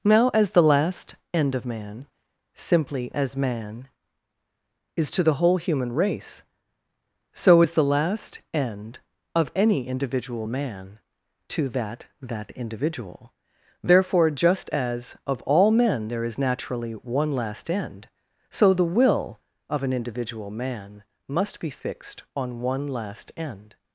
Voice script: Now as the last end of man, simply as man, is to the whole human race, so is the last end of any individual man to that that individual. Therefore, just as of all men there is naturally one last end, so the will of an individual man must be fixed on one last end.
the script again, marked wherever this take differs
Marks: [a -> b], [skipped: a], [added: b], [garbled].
Now as the last end of man, simply as man, is to the whole human race, so is the last end of any individual man to that that individual. Therefore, just as of all men there is naturally one last end, so the will of an individual man must be fixed on one last end.